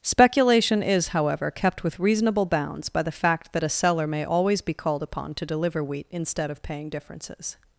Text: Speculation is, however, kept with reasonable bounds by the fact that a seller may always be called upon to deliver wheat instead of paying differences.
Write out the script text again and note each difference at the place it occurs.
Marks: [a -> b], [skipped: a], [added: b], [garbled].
Speculation is, however, kept with reasonable bounds by the fact that a seller may always be called upon to deliver wheat instead of paying differences.